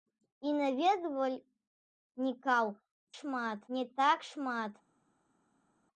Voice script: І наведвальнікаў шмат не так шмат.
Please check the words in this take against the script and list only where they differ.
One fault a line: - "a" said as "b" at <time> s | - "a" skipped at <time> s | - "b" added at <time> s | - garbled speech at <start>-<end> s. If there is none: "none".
none